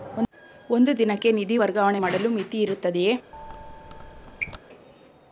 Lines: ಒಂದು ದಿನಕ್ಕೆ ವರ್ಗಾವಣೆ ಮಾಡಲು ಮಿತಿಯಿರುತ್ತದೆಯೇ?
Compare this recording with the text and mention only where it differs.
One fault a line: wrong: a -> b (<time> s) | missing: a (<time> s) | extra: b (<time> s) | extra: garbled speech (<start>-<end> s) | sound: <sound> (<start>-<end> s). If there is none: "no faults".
extra: ನಿಧಿ (1.3 s)
sound: squeak (3.3-4.6 s)